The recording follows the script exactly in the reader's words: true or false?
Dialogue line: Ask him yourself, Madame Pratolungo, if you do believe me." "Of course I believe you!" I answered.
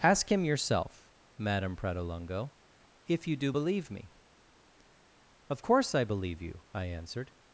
true